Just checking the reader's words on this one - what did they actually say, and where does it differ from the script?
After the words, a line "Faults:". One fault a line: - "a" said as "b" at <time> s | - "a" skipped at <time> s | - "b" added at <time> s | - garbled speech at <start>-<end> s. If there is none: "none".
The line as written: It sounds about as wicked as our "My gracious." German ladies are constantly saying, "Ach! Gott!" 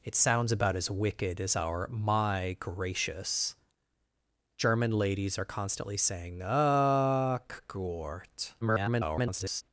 It sounds about as wicked as our "My gracious." German ladies are constantly saying, "Ach! Gott!" [garbled]
Faults:
- garbled speech at 8.6-9.6 s